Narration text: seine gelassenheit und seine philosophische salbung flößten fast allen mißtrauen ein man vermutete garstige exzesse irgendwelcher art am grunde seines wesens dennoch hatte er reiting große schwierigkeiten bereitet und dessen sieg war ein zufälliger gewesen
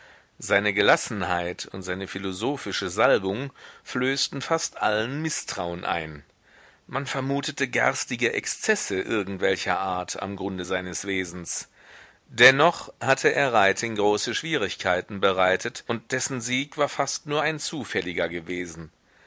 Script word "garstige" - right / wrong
right